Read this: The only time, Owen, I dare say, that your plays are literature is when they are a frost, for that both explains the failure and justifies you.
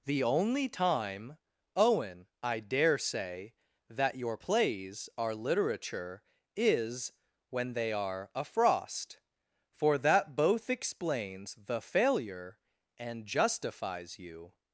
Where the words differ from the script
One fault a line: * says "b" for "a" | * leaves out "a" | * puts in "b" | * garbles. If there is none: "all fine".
all fine